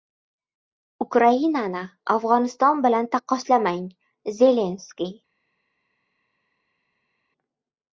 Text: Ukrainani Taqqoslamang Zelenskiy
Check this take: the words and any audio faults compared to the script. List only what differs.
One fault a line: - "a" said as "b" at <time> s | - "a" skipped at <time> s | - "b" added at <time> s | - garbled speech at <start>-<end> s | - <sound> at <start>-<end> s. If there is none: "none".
- "Afg‘oniston bilan" added at 2.1 s